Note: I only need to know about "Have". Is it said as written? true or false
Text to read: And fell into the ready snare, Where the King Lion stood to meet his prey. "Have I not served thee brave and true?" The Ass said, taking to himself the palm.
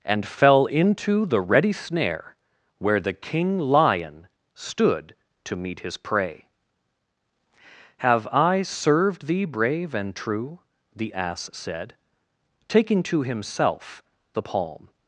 true